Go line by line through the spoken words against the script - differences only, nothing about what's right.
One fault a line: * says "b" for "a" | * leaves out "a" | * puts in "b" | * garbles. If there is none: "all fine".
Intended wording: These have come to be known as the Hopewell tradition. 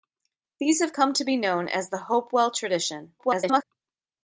* garbles